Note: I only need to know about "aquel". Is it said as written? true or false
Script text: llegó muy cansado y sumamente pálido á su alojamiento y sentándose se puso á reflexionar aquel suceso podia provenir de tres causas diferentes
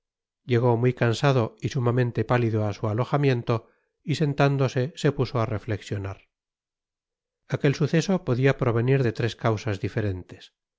true